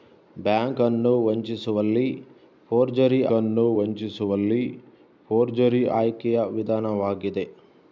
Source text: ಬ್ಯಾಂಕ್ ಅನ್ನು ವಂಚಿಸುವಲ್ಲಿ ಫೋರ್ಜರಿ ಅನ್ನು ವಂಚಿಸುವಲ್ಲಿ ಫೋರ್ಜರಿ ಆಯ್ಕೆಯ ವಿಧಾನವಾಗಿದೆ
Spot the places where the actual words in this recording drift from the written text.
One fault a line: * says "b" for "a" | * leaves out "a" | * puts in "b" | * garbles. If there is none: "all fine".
all fine